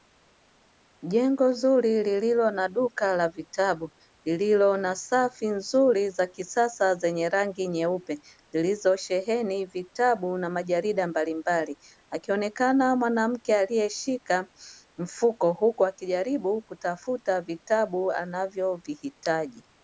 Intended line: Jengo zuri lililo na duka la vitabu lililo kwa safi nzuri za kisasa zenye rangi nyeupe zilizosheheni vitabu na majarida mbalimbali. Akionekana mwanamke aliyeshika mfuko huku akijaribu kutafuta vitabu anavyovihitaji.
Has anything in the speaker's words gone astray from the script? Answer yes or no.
yes